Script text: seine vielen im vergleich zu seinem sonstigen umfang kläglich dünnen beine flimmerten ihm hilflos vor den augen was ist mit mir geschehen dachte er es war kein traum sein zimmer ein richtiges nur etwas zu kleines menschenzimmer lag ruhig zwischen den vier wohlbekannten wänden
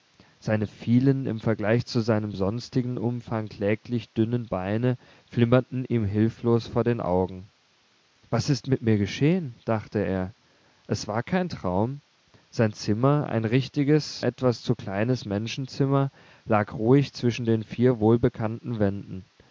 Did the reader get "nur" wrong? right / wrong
wrong